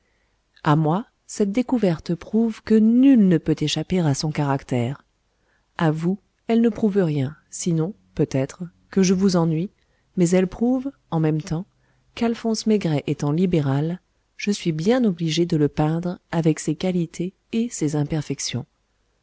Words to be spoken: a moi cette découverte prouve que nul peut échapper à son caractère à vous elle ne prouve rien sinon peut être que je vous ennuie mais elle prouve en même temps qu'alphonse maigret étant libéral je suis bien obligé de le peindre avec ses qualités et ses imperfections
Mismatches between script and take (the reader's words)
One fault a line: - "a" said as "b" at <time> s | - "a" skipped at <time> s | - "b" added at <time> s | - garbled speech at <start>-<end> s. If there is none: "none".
- "ne" added at 3.3 s